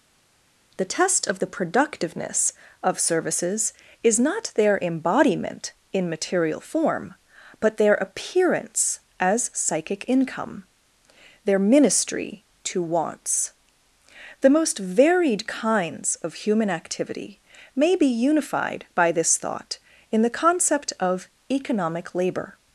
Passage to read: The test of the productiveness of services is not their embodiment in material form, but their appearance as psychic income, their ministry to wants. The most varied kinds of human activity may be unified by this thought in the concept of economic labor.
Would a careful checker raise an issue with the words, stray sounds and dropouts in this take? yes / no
no